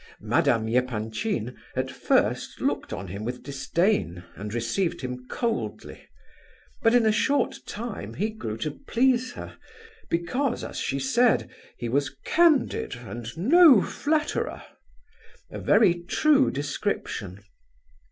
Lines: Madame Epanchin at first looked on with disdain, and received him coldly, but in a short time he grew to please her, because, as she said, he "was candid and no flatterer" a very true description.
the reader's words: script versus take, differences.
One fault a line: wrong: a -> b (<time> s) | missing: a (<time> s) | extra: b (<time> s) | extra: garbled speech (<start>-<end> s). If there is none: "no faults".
extra: him (3.1 s)